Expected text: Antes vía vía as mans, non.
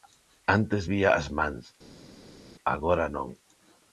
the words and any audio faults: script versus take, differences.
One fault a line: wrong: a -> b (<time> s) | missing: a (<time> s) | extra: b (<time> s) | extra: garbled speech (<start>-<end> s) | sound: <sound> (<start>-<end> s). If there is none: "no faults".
missing: vía (1.1 s)
extra: agora (2.7 s)